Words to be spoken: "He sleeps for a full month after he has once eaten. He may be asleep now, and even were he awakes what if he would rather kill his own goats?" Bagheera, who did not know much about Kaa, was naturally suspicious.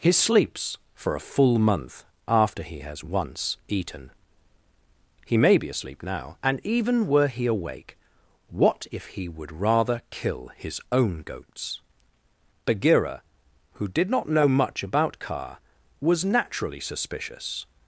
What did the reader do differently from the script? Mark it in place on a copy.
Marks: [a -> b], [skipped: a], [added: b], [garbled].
"He sleeps for a full month after he has once eaten. He may be asleep now, and even were he [awakes -> awake] what if he would rather kill his own goats?" Bagheera, who did not know much about Kaa, was naturally suspicious.